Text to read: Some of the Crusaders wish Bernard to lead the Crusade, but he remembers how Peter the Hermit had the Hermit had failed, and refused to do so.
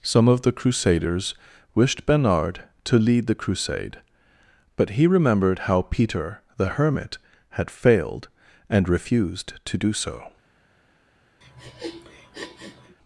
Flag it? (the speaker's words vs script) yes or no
yes